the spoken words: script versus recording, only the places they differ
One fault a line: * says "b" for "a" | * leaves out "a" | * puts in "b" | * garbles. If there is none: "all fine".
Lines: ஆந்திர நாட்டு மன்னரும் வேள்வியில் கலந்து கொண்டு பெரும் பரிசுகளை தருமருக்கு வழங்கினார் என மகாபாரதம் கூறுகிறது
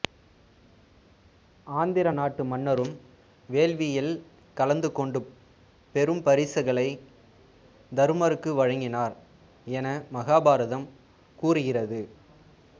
all fine